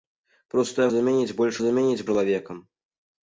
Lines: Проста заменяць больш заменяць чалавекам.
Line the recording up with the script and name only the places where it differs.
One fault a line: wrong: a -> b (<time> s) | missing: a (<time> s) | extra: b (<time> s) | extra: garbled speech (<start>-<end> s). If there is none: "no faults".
no faults